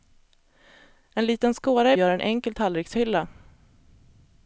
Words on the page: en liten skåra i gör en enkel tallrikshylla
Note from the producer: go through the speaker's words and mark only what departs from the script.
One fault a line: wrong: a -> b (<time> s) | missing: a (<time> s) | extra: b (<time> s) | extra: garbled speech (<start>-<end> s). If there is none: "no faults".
no faults